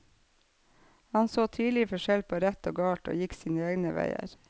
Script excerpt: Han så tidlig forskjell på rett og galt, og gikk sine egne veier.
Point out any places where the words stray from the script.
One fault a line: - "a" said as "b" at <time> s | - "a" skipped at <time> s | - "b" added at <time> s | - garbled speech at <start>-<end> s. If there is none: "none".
none